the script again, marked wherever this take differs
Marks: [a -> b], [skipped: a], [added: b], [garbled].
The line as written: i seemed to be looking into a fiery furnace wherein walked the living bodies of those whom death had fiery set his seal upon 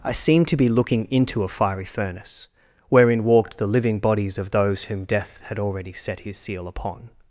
i seemed to be looking into a fiery furnace wherein walked the living bodies of those whom death had [fiery -> already] set his seal upon